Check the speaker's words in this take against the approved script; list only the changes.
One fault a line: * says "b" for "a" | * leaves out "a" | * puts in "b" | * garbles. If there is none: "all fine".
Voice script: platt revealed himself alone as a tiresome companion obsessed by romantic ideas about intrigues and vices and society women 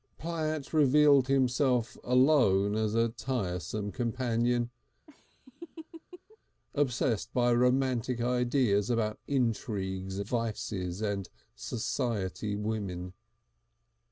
* leaves out "and"